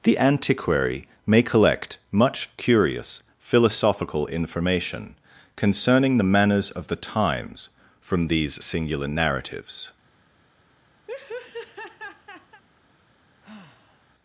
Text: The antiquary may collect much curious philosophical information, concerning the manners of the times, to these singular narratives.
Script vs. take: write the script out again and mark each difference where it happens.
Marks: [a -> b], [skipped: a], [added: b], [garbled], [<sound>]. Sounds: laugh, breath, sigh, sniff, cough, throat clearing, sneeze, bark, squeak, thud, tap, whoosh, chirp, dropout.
The antiquary may collect much curious philosophical information, concerning the manners of the times, [to -> from] these singular narratives. [laugh] [sigh]